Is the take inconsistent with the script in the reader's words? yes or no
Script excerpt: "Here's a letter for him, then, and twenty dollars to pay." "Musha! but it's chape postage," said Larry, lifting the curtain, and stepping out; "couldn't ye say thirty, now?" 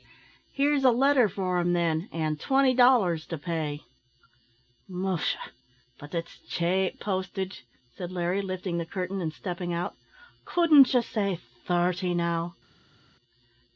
no